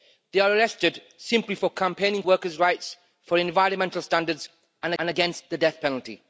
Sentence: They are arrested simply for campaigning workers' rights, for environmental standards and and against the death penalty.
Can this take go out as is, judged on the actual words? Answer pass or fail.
pass